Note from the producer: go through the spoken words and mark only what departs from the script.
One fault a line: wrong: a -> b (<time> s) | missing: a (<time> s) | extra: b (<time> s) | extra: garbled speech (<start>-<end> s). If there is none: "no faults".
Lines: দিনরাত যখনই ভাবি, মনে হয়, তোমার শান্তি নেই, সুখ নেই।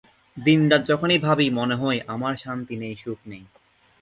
wrong: তোমার -> আমার (2.1 s)